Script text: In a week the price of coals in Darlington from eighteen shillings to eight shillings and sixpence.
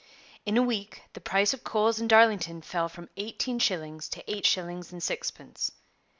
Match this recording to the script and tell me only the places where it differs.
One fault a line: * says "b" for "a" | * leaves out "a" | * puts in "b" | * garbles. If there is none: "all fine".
* puts in "fell"